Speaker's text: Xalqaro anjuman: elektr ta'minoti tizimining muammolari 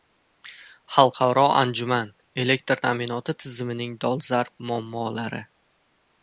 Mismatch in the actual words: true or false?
true